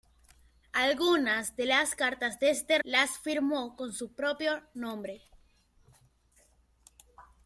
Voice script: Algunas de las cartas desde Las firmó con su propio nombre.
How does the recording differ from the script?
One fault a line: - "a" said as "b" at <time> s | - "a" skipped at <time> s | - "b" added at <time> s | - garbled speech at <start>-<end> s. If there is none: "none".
none